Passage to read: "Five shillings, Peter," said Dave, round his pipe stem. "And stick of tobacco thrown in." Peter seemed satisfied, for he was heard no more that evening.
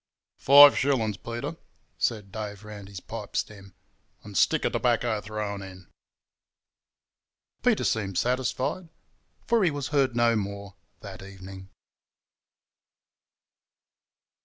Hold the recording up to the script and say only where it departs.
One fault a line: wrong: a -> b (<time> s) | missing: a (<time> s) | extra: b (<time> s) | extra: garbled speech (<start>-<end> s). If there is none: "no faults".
no faults